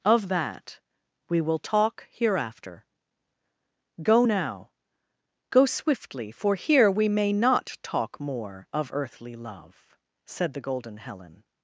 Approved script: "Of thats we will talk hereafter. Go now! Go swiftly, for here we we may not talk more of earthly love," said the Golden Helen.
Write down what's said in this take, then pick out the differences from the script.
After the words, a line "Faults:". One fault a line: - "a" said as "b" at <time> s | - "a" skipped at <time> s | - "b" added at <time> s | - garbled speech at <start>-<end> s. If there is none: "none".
"Of that we will talk hereafter. Go now! Go swiftly, for here we may not talk more of earthly love," said the Golden Helen.
Faults:
- "thats" said as "that" at 0.3 s
- "we" skipped at 7.1 s